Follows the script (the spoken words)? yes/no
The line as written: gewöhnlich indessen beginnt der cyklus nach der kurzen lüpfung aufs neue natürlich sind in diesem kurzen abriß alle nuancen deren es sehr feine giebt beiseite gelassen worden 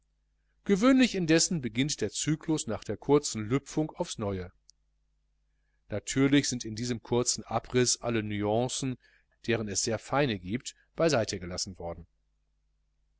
yes